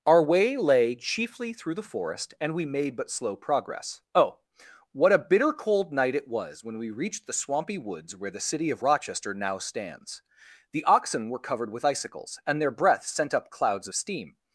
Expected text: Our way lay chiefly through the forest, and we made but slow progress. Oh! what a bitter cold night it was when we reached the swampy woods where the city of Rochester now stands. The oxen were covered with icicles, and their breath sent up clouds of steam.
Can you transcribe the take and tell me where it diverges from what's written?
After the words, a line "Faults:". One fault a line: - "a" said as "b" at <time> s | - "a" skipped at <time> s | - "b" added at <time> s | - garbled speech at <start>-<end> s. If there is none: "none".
Our way lay chiefly through the forest, and we made but slow progress. Oh! what a bitter cold night it was when we reached the swampy woods where the city of Rochester now stands. The oxen were covered with icicles, and their breath sent up clouds of steam.
Faults:
none